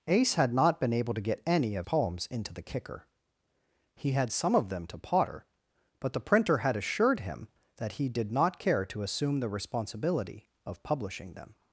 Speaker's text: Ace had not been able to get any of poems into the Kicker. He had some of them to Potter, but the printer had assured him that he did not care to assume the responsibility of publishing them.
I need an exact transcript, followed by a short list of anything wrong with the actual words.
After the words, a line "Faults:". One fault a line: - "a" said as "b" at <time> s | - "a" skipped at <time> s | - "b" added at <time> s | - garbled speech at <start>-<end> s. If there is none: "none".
Ace had not been able to get any of poems into the Kicker. He had some of them to Potter, but the printer had assured him that he did not care to assume the responsibility of publishing them.
Faults:
none